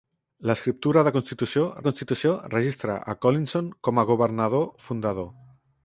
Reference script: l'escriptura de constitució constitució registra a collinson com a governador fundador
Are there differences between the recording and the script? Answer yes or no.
no